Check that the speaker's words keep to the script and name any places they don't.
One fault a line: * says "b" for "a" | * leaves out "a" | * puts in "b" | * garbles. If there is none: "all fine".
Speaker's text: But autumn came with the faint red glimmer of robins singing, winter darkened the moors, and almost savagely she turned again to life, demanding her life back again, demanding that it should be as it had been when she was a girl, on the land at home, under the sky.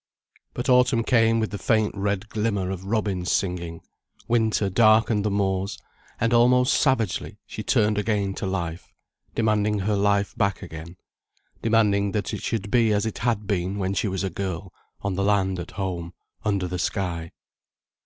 all fine